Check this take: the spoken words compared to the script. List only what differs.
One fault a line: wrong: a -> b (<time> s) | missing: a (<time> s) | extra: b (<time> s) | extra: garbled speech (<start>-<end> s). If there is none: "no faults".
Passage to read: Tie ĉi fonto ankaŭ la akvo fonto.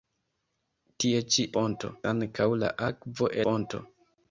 no faults